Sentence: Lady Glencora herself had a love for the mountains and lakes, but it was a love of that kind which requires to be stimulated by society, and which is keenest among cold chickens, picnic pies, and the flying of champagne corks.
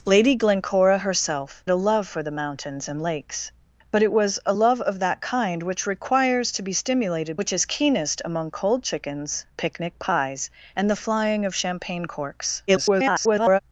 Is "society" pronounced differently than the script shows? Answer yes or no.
yes